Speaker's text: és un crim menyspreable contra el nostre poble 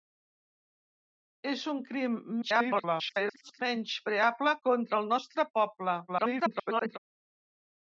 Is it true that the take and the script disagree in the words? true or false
true